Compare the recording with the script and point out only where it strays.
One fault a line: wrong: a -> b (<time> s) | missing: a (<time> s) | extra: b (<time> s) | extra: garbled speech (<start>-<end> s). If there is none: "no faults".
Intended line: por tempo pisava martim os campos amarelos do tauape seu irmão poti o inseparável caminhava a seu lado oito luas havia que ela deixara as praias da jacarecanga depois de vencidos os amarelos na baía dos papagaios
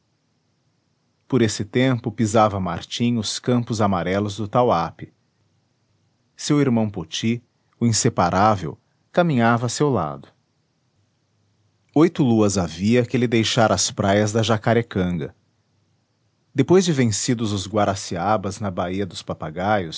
extra: esse (1.4 s)
wrong: ela -> ele (13.2 s)
wrong: amarelos -> guaraciabas (17.7 s)